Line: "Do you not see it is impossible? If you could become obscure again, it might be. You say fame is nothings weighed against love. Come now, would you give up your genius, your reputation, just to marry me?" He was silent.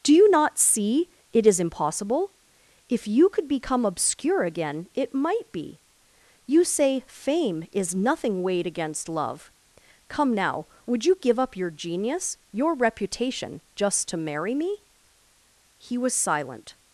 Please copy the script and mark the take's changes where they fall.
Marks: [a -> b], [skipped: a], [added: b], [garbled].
"Do you not see it is impossible? If you could become obscure again, it might be. You say fame is [nothings -> nothing] weighed against love. Come now, would you give up your genius, your reputation, just to marry me?" He was silent.